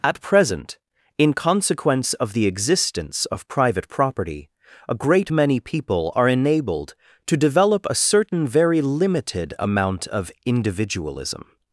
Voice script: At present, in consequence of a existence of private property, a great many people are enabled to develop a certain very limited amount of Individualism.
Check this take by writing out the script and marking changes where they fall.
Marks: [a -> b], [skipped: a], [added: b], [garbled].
At present, in consequence of [a -> the] existence of private property, a great many people are enabled to develop a certain very limited amount of Individualism.